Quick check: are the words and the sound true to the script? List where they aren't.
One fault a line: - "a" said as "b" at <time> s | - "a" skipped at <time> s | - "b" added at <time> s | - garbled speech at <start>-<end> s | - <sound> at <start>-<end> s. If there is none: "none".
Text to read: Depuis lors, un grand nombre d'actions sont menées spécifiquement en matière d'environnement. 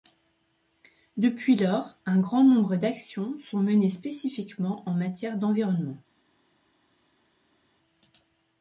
none